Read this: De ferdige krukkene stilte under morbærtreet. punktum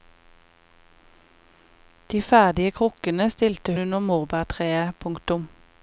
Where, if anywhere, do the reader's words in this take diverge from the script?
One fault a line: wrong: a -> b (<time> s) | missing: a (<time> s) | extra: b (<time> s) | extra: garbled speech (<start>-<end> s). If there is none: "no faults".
no faults